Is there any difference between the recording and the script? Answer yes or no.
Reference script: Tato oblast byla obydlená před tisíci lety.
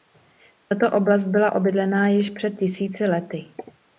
yes